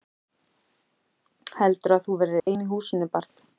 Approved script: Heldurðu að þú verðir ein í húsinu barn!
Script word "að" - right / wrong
right